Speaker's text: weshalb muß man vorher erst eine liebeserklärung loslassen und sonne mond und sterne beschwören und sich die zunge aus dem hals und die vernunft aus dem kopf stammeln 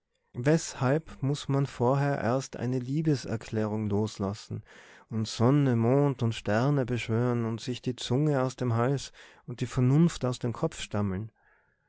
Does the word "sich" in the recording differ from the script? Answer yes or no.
no